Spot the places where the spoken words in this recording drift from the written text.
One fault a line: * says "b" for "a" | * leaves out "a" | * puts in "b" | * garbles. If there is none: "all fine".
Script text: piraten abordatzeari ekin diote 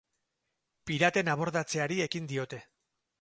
all fine